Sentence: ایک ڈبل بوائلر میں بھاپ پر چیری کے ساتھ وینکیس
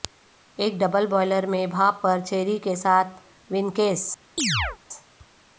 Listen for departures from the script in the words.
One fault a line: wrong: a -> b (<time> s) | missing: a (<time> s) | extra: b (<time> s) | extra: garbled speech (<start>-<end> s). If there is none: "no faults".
no faults